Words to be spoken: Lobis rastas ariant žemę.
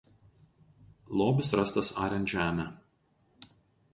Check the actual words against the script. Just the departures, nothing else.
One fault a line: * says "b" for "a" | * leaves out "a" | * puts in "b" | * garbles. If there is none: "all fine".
all fine